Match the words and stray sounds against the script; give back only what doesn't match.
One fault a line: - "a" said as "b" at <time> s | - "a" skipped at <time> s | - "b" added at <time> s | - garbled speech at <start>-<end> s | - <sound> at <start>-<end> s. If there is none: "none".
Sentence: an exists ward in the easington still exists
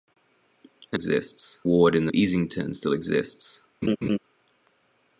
- laugh at 3.8-4.2 s